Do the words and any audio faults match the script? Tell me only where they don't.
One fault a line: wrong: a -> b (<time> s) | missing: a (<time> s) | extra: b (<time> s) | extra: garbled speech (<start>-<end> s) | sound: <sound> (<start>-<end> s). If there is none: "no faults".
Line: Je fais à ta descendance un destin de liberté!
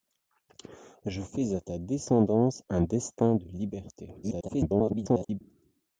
extra: garbled speech (4.2-5.4 s)